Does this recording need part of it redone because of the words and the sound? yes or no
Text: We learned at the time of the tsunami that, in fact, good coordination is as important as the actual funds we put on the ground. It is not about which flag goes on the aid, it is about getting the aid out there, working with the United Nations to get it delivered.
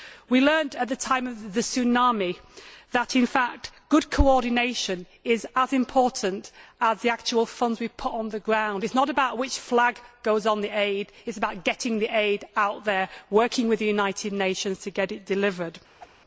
yes